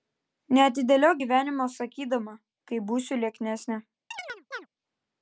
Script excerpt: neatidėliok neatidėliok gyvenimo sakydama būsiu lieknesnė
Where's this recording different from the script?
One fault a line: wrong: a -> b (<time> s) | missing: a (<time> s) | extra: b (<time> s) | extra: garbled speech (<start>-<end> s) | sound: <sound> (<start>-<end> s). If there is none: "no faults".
missing: neatidėliok (1.2 s)
extra: kai (2.7 s)
sound: chirp (4.1-4.7 s)